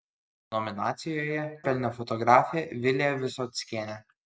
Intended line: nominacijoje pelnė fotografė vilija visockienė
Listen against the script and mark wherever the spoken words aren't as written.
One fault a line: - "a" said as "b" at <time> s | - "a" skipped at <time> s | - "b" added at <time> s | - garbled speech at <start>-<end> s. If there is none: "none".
none